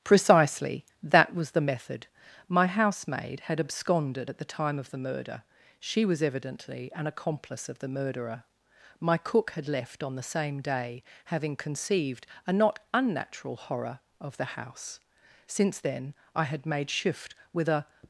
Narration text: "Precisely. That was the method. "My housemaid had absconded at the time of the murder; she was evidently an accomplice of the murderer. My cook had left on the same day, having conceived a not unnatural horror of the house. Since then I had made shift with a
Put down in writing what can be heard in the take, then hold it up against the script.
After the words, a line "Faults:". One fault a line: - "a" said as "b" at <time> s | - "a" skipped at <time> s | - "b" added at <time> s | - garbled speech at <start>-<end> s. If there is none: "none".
"Precisely. That was the method. "My housemaid had absconded at the time of the murder; she was evidently an accomplice of the murderer. My cook had left on the same day, having conceived a not unnatural horror of the house. Since then I had made shift with a
Faults:
none